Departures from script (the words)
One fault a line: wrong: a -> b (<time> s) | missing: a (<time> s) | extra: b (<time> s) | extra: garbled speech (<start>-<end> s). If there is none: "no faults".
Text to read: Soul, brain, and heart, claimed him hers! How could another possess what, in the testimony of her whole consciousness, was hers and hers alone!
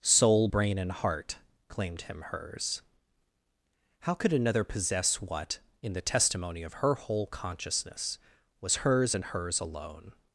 no faults